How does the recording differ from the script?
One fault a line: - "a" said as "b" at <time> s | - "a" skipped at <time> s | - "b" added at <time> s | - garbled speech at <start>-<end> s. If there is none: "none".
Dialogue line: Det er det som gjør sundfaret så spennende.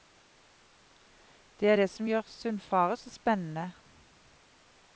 none